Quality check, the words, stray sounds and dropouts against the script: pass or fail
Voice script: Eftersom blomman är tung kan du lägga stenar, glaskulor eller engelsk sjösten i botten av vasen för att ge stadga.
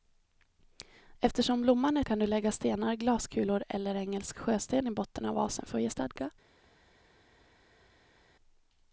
fail